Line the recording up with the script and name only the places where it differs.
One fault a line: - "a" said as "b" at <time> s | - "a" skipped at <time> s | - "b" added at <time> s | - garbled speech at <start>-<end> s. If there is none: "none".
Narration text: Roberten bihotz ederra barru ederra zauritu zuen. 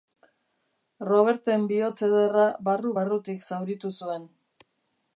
- "ederra" said as "barrutik" at 3.0 s